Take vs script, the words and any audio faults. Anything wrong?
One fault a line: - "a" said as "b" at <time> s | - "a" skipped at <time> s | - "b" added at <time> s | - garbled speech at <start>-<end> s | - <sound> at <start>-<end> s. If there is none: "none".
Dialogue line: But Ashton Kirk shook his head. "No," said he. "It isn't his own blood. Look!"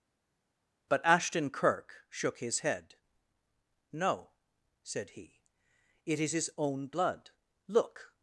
- "isn't" said as "is" at 6.2 s